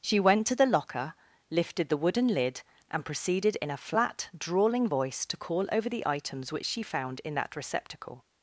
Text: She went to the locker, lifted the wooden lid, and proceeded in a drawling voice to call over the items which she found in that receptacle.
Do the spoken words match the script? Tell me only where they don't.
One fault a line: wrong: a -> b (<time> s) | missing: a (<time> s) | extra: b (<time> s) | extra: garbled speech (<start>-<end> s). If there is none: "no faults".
extra: flat (3.8 s)